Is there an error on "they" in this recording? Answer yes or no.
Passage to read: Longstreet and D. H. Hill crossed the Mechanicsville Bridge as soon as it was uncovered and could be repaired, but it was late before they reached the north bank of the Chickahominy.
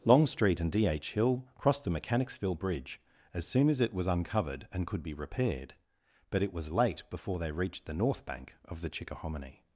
no